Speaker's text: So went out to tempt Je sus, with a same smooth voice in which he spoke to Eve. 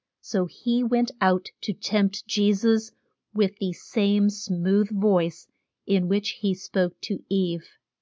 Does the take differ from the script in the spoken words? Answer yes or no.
yes